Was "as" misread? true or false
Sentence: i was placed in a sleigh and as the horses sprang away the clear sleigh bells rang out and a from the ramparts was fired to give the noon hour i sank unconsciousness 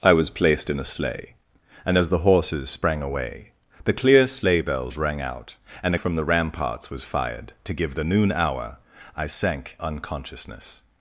false